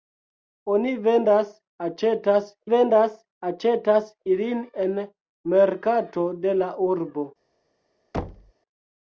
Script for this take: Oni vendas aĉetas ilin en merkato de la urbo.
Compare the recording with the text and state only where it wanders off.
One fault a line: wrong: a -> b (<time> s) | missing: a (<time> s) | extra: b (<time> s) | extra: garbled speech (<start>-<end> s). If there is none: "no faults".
extra: vendas aĉetas (2.7 s)